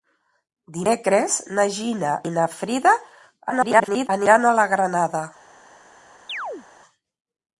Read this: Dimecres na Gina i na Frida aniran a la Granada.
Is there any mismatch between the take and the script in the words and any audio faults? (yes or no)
yes